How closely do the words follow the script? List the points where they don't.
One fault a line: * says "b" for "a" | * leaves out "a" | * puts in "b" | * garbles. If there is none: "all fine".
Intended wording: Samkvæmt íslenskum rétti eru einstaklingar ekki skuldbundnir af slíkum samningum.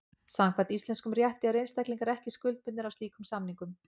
all fine